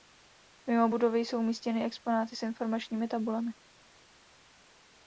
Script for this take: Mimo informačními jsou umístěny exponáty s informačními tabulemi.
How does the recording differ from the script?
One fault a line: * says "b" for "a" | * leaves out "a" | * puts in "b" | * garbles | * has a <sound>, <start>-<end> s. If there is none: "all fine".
* says "budovy" for "informačními"